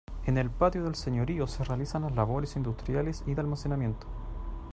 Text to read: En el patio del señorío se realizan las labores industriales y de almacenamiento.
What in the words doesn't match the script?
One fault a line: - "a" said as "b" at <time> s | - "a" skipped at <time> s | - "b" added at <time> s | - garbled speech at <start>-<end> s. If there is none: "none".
none